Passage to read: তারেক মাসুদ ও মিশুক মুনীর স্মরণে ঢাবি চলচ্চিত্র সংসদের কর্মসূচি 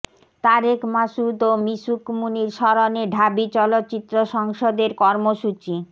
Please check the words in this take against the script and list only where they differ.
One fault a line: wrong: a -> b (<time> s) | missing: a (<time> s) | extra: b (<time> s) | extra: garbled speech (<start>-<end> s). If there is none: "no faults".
no faults